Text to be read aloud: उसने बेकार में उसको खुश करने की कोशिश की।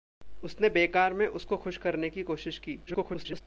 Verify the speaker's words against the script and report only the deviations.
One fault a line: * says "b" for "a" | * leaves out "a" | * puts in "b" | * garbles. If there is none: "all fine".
* garbles